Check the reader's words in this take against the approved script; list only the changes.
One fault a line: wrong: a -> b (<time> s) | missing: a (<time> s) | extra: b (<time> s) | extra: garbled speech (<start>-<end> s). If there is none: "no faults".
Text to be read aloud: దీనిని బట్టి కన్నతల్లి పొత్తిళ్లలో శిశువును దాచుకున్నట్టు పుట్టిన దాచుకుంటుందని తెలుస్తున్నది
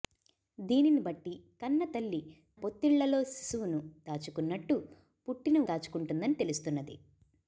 no faults